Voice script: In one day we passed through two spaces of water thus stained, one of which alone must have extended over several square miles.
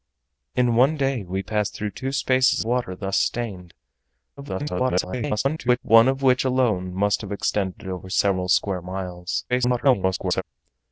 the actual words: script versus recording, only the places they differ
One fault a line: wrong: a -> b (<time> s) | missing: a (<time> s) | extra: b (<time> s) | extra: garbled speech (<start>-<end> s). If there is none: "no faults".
missing: of (2.6 s)
extra: garbled speech (4.4-5.8 s)
extra: garbled speech (9.5-10.4 s)